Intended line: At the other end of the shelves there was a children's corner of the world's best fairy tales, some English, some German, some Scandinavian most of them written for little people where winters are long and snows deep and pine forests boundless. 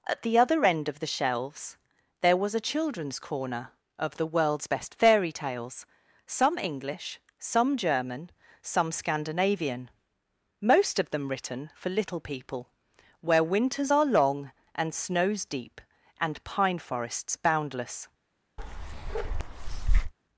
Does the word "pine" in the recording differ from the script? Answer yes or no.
no